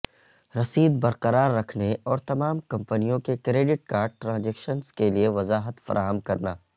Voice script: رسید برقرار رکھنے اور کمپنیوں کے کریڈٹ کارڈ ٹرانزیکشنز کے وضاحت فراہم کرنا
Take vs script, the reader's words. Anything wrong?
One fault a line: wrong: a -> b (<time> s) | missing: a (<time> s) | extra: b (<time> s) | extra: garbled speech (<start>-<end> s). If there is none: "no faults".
extra: تمام (2.3 s)
extra: لئے (5.1 s)